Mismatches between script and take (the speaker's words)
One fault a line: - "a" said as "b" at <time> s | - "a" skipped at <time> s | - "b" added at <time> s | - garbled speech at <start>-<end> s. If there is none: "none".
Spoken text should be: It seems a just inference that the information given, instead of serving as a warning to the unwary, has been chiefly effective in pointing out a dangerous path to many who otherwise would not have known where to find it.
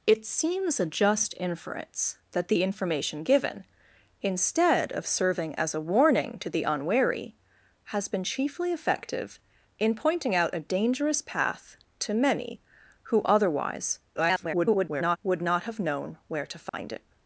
- garbled speech at 14.1-15.2 s